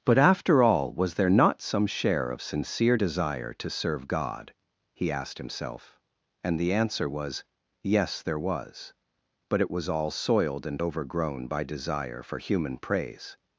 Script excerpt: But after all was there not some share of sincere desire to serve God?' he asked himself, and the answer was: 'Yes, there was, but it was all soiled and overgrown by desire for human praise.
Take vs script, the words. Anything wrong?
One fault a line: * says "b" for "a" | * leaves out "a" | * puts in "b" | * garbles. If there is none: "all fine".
all fine